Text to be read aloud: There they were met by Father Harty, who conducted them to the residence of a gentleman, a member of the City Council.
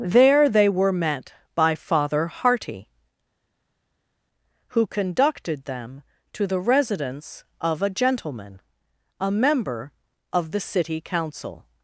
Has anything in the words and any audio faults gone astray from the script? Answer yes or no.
no